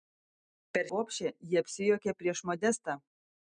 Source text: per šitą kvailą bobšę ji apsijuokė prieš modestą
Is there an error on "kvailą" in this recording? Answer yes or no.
yes